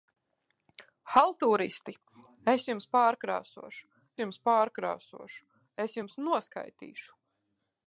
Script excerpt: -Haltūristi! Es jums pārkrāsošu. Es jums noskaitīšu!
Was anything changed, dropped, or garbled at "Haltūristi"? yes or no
no